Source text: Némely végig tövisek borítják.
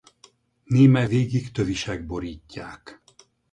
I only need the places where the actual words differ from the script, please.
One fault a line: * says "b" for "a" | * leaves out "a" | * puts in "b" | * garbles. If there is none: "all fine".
all fine